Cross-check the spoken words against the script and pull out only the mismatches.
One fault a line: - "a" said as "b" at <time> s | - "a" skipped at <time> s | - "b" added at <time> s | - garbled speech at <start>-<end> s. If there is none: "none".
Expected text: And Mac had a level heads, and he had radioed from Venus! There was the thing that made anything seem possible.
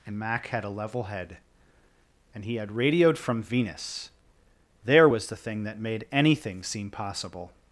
- "heads" said as "head" at 1.0 s